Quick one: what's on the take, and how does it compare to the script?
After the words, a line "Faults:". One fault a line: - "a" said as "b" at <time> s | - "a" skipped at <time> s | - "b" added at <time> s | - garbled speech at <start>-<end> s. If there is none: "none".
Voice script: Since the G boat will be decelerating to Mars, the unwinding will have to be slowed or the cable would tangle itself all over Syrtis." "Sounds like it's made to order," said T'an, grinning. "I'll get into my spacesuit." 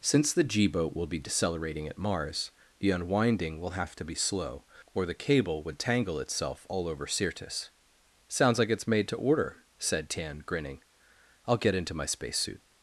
Since the G boat will be decelerating at Mars, the unwinding will have to be slow or the cable would tangle itself all over Syrtis." "Sounds like it's made to order," said T'an, grinning. "I'll get into my spacesuit."
Faults:
- "to" said as "at" at 1.9 s
- "slowed" said as "slow" at 4.2 s